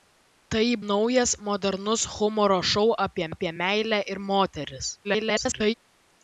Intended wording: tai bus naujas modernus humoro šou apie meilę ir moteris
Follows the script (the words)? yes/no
no